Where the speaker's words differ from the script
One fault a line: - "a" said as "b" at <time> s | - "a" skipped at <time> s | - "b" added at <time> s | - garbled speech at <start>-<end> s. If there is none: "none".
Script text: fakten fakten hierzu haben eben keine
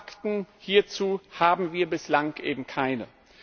- "fakten" skipped at 0.5 s
- "wir bislang" added at 1.7 s